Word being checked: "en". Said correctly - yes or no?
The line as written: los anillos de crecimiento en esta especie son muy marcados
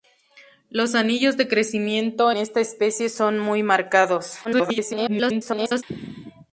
no